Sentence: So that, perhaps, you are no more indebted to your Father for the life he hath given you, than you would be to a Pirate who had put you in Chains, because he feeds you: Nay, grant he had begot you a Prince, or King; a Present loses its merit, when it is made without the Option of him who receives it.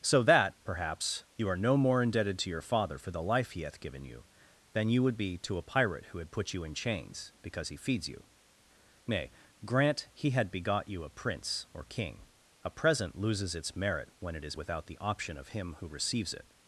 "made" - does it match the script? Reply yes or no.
no